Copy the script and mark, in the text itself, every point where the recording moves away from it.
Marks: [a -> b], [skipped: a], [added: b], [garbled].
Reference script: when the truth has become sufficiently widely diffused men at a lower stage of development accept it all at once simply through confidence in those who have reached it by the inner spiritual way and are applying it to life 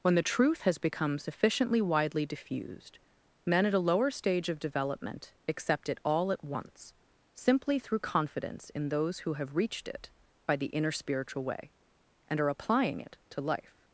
when the truth has become sufficiently widely diffused men at a lower stage of development accept it all at once simply through confidence in those who have reached it by the inner spiritual way and are applying it to life